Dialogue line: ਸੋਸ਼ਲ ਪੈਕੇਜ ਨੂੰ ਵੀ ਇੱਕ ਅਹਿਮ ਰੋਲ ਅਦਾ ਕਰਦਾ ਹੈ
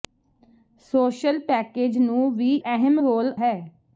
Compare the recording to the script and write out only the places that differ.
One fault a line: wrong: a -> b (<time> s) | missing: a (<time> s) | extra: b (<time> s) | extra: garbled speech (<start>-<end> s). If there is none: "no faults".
missing: ਇੱਕ (2.5 s)
missing: ਅਦਾ ਕਰਦਾ (3.3 s)